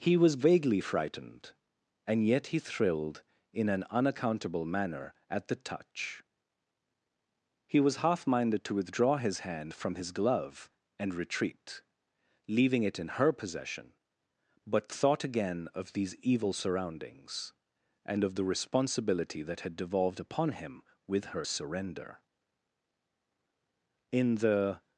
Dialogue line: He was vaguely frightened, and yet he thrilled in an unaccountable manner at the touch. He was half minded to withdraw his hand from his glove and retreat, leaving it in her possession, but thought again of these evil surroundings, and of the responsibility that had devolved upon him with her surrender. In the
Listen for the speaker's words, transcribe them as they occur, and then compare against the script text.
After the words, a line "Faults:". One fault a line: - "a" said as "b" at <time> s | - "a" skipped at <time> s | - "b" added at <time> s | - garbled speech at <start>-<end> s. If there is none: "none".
He was vaguely frightened, and yet he thrilled in an unaccountable manner at the touch. He was half minded to withdraw his hand from his glove and retreat, leaving it in her possession, but thought again of these evil surroundings, and of the responsibility that had devolved upon him with her surrender. In the
Faults:
none